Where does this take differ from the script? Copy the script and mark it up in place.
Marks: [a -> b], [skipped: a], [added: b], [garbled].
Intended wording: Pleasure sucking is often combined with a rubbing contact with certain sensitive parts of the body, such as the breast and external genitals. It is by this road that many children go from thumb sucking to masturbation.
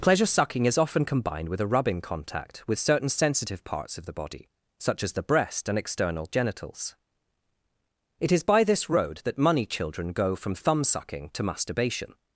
Pleasure sucking is often combined with a rubbing contact with certain sensitive parts of the body, such as the breast and external genitals. It is by this road that [many -> money] children go from thumb sucking to masturbation.